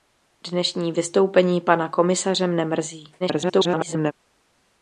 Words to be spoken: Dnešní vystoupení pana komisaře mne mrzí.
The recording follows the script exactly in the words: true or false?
false